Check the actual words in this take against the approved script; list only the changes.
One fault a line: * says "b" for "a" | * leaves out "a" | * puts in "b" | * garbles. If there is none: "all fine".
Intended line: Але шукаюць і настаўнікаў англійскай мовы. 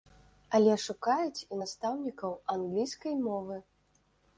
all fine